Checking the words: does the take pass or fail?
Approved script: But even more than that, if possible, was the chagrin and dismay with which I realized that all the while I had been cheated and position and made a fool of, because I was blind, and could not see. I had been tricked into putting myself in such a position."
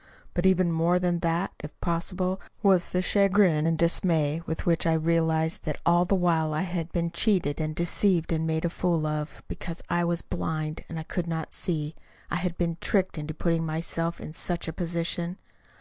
fail